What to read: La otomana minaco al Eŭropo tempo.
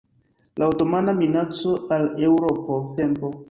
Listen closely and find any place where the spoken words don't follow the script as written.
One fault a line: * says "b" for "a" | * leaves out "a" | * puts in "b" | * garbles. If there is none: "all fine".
all fine